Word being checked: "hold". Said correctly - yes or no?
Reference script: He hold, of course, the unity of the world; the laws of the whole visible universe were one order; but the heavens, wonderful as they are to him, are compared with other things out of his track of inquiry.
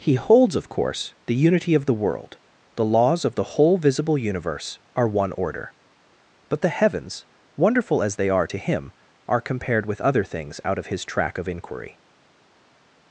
no